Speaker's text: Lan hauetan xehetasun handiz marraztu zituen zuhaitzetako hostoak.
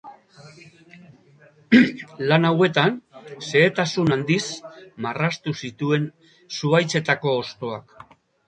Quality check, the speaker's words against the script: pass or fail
pass